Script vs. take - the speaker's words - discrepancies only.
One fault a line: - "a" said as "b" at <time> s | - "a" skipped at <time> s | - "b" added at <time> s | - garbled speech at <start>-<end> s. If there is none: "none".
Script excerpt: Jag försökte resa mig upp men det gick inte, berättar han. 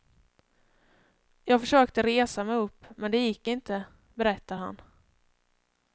none